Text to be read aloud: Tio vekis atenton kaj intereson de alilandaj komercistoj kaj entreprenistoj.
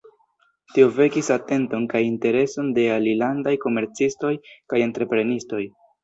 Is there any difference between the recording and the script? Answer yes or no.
no